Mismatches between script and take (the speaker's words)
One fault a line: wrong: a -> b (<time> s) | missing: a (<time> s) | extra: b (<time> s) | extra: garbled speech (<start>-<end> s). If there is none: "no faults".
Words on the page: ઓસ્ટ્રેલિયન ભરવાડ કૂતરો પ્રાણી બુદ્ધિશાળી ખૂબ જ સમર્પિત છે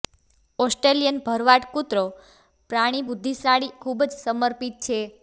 no faults